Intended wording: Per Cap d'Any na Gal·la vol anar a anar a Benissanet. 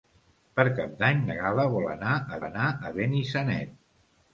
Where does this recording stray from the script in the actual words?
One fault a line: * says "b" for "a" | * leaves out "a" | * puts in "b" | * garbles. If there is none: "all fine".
all fine